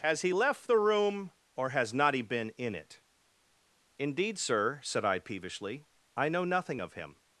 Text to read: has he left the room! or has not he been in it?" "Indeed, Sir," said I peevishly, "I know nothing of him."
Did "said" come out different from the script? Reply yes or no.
no